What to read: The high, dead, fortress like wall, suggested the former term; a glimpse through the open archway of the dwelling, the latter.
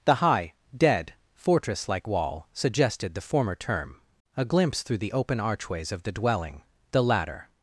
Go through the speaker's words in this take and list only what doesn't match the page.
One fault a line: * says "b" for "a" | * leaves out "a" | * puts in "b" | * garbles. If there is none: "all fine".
* says "archways" for "archway"